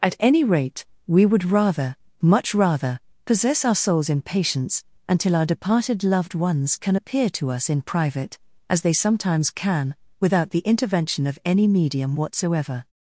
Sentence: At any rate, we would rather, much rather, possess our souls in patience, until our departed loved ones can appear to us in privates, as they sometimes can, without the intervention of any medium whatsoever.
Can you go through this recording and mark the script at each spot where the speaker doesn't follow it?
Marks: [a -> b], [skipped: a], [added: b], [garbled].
At any rate, we would rather, much rather, possess our souls in patience, until our departed loved ones can appear to us in [privates, -> private] as they sometimes can, without the intervention of any medium whatsoever.